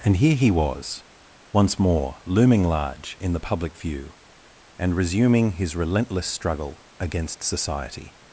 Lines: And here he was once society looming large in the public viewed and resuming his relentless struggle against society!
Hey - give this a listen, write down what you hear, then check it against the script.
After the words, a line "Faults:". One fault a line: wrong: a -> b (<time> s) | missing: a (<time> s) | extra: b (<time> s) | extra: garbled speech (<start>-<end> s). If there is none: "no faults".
And here he was once more looming large in the public view and resuming his relentless struggle against society!
Faults:
wrong: society -> more (1.8 s)
wrong: viewed -> view (3.8 s)